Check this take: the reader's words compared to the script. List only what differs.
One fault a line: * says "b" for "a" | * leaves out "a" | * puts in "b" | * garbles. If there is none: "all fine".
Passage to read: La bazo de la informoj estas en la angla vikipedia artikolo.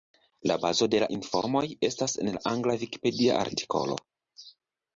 all fine